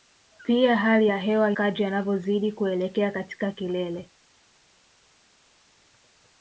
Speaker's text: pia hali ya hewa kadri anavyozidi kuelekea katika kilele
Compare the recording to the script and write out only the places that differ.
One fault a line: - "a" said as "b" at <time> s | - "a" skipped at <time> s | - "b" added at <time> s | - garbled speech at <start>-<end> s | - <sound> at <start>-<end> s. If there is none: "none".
none